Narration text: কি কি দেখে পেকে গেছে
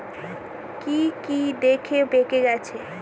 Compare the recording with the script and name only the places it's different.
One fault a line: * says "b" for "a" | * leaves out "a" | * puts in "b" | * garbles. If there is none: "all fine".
all fine